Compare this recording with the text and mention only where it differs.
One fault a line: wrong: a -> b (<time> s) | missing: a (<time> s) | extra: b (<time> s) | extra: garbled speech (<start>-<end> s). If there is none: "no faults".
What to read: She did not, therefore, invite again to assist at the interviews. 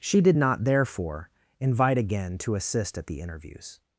no faults